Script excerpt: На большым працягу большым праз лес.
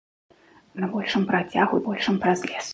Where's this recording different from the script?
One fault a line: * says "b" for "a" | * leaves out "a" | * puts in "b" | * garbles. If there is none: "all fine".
all fine